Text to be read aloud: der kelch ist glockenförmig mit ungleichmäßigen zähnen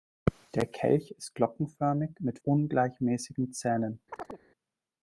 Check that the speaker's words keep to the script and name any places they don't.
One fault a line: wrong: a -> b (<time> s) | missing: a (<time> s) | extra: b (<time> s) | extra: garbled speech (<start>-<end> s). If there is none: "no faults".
no faults